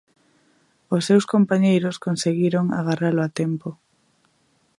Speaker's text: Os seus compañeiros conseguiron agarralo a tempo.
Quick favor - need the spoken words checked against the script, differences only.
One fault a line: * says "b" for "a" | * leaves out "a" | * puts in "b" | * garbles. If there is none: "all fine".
all fine